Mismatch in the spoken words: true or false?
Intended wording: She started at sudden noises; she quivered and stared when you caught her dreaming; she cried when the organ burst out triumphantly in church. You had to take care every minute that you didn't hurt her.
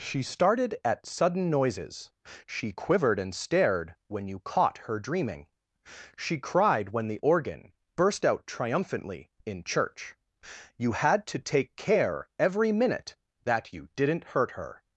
false